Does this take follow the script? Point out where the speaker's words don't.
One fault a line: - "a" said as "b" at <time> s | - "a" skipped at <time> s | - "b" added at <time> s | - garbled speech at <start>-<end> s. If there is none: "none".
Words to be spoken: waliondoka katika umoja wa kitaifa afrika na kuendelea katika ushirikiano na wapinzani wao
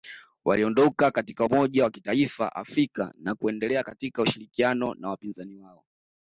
none